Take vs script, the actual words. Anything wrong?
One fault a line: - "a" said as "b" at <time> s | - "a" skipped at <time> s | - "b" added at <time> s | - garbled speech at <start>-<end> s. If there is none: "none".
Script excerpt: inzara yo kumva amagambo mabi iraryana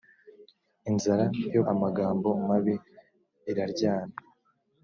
- "kumva" skipped at 1.6 s